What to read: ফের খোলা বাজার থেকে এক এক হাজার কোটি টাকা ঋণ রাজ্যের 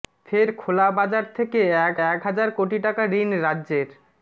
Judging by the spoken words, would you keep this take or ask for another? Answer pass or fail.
pass